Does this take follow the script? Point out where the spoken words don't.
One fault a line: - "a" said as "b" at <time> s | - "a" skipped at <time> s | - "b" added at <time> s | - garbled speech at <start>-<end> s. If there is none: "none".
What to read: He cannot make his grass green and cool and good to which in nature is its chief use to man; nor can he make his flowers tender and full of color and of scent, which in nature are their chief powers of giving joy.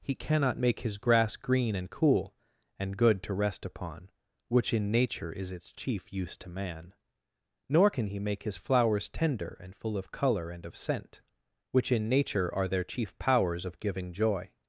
- "rest upon" added at 3.3 s